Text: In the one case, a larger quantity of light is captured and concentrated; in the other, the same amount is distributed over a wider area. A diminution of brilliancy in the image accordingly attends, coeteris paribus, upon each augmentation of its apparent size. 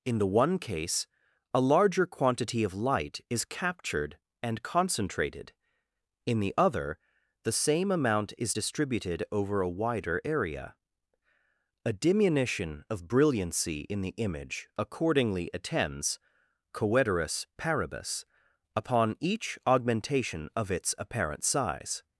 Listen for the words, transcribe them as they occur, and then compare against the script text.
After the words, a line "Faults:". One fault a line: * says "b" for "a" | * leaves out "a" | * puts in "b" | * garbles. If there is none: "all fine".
In the one case, a larger quantity of light is captured and concentrated; in the other, the same amount is distributed over a wider area. A diminution of brilliancy in the image accordingly attends, coeteris paribus, upon each augmentation of its apparent size.
Faults:
all fine